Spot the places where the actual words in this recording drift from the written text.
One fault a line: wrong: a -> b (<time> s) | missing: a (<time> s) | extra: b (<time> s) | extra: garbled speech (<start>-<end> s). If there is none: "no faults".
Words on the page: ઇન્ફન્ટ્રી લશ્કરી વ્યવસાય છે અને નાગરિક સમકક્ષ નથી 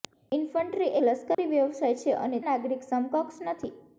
no faults